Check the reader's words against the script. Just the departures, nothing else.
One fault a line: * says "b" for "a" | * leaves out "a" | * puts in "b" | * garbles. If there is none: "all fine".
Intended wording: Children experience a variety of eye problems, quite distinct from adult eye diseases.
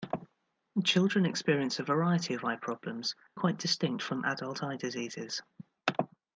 all fine